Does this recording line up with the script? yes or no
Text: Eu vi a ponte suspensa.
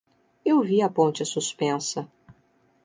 yes